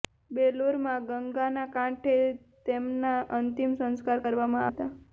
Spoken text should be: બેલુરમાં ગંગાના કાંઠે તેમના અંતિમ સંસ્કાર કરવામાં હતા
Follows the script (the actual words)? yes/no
yes